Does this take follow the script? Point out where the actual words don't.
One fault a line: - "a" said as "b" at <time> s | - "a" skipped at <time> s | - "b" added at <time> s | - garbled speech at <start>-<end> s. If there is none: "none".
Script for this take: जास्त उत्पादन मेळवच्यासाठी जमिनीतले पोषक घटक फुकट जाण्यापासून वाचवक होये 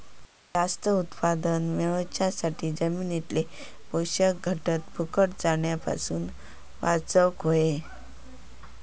none